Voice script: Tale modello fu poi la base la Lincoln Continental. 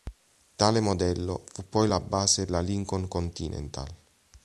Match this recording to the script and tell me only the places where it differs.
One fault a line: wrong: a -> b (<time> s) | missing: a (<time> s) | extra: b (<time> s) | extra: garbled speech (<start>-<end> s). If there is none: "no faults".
no faults